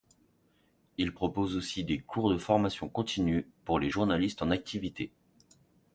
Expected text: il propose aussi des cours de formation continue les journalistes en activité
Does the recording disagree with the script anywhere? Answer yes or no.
yes